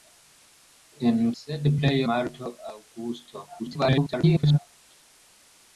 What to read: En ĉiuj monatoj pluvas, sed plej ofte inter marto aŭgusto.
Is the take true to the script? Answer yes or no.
no